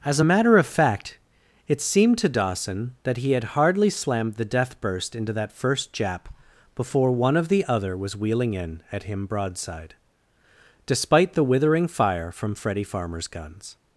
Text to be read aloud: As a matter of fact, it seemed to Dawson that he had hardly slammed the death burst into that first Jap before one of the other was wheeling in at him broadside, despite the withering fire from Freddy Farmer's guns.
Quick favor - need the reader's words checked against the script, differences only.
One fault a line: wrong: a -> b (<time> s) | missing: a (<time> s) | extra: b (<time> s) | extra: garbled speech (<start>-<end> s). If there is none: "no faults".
no faults